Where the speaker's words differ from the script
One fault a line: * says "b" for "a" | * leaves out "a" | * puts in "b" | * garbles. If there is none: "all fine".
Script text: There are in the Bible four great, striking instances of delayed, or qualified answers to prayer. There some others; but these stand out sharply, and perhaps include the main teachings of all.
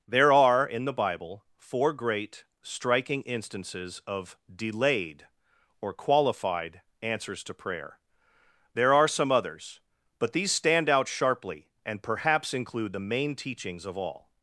* puts in "are"